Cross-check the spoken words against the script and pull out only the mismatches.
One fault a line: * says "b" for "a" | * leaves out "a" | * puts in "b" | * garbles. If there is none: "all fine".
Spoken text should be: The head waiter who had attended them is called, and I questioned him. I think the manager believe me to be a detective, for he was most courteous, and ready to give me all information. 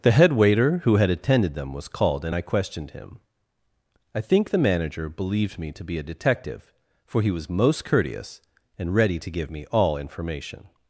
* says "was" for "is"
* says "believed" for "believe"